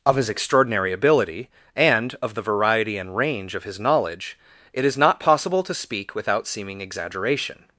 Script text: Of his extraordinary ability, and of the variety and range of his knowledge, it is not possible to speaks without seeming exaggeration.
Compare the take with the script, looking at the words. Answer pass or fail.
fail